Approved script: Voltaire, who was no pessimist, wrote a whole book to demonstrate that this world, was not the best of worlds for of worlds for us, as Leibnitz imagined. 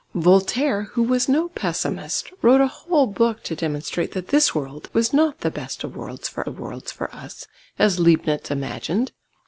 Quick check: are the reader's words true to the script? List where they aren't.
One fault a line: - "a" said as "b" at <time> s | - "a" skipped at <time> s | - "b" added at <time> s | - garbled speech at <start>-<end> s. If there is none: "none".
none